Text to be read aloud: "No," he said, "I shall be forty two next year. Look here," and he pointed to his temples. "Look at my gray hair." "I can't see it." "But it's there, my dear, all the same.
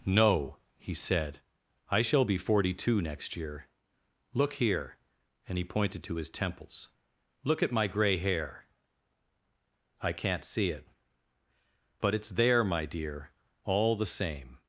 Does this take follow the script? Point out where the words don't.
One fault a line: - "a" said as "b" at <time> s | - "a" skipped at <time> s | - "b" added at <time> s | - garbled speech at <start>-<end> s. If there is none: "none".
none